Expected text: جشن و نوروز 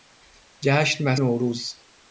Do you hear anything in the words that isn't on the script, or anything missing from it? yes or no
no